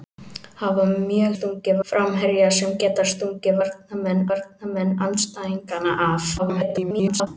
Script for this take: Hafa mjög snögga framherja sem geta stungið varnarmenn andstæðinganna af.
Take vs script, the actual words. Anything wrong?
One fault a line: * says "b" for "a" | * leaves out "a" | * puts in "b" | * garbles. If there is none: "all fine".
* says "stungið" for "snögga"
* puts in "varnarmenn"
* garbles